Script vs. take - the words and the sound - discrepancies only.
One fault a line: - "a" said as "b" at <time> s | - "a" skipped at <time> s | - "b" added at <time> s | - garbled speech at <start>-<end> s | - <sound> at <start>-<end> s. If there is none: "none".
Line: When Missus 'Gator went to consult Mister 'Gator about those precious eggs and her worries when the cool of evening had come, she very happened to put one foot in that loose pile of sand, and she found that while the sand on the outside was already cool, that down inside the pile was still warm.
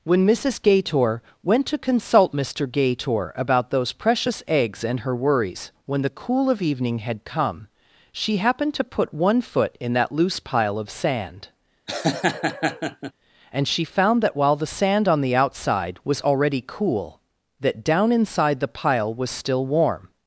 - "very" skipped at 8.4 s
- laugh at 11.9-13.1 s